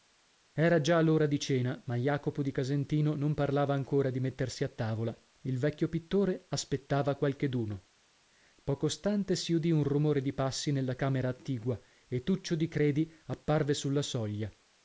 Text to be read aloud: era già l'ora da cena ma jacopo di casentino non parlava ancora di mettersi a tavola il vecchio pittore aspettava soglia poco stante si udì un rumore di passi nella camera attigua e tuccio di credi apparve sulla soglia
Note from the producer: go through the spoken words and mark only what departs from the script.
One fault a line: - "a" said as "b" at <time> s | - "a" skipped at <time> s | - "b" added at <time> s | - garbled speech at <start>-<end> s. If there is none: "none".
- "da" said as "di" at 1.3 s
- "soglia" said as "qualcheduno" at 7.2 s